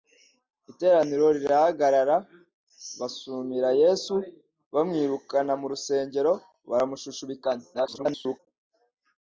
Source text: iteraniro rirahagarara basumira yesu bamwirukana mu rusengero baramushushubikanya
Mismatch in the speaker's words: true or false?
true